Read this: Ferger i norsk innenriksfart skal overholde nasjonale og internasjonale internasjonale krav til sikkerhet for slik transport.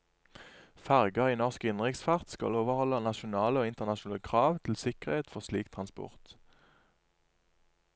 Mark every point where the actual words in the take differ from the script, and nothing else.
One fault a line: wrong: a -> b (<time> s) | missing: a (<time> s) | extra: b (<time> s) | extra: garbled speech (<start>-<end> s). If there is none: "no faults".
missing: internasjonale (4.2 s)